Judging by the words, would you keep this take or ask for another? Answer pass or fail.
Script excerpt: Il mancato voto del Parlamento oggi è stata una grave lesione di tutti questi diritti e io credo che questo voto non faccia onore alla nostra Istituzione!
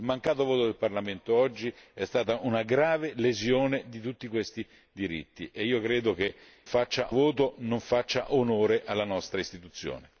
fail